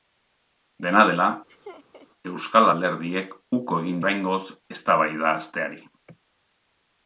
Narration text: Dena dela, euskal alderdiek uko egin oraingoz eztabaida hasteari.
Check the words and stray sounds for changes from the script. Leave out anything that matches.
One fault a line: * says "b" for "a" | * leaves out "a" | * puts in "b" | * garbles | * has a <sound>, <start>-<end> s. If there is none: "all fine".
* has a laugh, 1.5-2.1 s